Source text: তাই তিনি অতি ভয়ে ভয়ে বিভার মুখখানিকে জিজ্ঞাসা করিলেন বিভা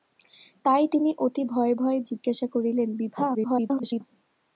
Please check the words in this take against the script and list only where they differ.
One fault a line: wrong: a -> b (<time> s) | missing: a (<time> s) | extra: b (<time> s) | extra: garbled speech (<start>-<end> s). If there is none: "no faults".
missing: বিভার মুখখানিকে (2.0 s)
extra: garbled speech (3.3-4.0 s)